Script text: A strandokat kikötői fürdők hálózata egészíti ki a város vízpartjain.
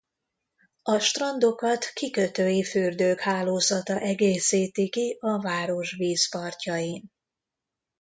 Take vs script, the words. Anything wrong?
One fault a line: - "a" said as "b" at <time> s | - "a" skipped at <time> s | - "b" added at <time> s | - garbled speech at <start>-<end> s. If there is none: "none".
none